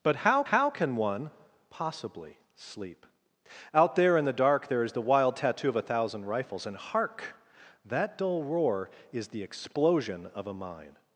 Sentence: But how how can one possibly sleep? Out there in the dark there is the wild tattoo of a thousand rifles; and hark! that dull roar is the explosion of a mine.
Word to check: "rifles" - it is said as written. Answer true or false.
true